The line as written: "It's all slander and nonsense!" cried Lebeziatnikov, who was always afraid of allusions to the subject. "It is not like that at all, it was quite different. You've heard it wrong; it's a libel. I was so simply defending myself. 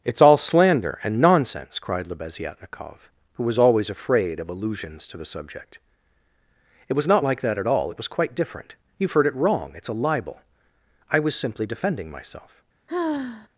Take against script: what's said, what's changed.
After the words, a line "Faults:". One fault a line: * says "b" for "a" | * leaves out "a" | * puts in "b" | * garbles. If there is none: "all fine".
"It's all slander and nonsense!" cried Lebeziatnikov, who was always afraid of allusions to the subject. "It was not like that at all, it was quite different. You've heard it wrong; it's a libel. I was simply defending myself.
Faults:
* says "was" for "is"
* leaves out "so"